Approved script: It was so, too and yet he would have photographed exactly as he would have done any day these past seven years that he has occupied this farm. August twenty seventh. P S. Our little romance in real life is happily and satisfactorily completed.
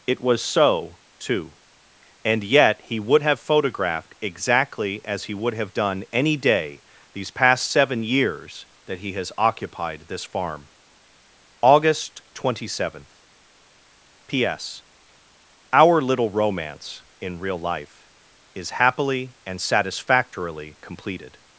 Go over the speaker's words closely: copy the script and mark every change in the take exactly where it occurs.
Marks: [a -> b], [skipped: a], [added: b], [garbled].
It was so, too and yet he would have photographed exactly as he would have done any day these past seven years that he has occupied this farm. August twenty seventh. P S. Our little romance in real life is happily and satisfactorily completed.